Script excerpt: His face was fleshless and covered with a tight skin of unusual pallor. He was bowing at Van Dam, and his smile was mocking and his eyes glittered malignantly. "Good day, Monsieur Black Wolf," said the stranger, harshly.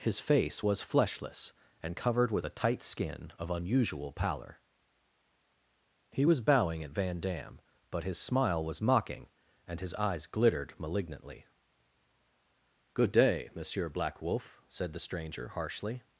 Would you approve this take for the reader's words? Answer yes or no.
no